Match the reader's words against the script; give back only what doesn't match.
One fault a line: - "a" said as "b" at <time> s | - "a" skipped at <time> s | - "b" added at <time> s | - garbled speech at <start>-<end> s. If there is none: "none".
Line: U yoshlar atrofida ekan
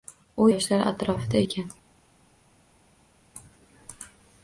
none